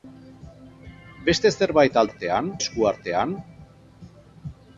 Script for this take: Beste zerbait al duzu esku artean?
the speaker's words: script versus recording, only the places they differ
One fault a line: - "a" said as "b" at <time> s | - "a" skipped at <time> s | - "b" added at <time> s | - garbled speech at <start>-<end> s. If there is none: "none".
- "duzu" said as "artean" at 2.1 s